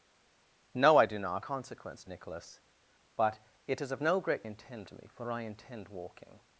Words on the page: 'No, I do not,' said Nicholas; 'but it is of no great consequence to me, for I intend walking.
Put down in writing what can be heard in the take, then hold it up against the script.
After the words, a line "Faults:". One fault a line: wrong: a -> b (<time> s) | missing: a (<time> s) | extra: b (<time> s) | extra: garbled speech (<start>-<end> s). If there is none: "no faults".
'No, I do not,' consequence Nicholas; 'but it is of no great intend to me, for I intend walking.
Faults:
wrong: said -> consequence (1.4 s)
wrong: consequence -> intend (4.4 s)